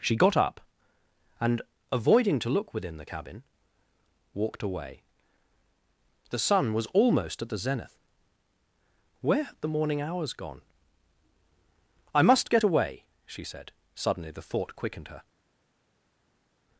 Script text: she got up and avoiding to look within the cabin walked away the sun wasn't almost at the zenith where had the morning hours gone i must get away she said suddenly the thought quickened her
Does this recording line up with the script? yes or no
no